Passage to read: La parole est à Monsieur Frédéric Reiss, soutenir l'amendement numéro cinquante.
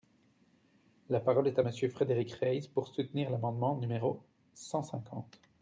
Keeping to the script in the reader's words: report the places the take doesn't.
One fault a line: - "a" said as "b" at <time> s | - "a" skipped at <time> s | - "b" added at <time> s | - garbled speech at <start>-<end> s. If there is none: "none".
- "pour" added at 2.7 s
- "cent" added at 4.5 s